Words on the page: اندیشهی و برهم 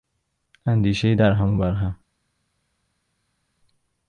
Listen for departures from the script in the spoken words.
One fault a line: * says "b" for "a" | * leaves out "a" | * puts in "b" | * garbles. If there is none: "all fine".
* puts in "درهم"